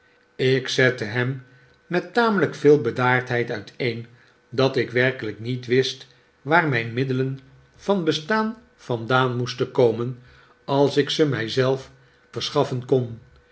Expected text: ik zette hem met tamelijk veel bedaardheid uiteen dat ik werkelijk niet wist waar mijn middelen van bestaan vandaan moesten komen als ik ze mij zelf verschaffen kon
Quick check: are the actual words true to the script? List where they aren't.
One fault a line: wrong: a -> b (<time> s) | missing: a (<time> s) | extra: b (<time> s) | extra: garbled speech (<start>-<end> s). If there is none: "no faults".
no faults